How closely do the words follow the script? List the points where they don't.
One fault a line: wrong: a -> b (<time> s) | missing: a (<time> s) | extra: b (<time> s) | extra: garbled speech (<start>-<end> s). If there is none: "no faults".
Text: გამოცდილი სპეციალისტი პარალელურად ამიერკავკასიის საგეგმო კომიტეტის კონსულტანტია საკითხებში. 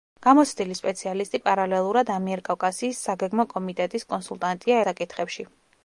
no faults